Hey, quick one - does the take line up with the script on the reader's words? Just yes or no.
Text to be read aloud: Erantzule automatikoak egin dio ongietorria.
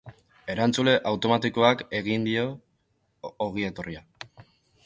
yes